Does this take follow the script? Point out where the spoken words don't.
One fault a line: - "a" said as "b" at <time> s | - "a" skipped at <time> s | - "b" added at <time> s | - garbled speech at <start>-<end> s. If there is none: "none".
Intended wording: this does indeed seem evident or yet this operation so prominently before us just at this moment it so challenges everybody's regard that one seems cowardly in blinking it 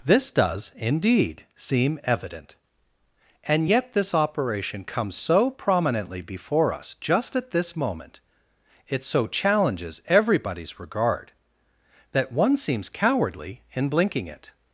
- "or" said as "and" at 3.4 s
- "comes" added at 4.8 s